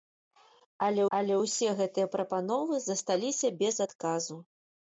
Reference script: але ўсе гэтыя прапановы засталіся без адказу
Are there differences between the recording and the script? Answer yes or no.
yes